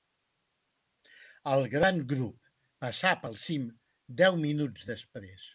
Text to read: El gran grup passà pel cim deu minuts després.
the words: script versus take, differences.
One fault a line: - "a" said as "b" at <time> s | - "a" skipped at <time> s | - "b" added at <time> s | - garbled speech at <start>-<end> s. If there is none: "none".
none